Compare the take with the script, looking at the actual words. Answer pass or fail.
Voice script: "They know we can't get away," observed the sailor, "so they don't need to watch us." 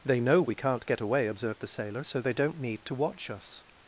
pass